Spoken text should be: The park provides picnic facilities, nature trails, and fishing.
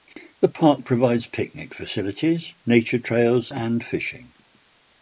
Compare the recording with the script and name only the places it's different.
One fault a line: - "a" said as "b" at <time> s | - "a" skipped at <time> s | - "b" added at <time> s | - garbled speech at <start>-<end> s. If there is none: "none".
none